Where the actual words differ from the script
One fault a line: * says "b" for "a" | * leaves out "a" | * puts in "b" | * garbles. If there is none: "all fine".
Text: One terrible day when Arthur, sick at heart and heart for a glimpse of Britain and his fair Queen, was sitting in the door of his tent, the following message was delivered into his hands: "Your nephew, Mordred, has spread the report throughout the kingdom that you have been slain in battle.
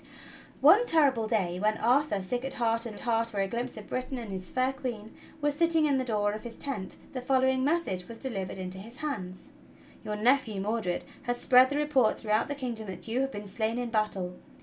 all fine